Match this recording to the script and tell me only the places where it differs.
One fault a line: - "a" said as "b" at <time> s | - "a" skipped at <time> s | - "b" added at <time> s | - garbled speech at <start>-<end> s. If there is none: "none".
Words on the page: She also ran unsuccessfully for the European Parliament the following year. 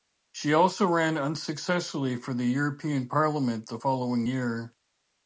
none